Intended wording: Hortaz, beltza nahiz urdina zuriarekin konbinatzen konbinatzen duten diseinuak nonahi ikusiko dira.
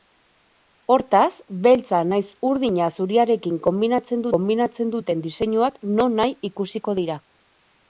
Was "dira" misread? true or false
false